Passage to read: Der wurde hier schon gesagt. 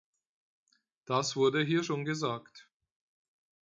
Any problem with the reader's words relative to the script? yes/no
yes